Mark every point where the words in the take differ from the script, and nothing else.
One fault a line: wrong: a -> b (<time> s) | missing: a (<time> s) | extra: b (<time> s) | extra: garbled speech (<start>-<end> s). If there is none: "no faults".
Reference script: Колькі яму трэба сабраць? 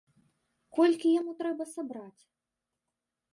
no faults